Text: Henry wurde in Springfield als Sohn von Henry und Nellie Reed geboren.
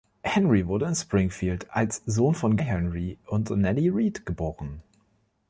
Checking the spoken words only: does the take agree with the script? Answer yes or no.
yes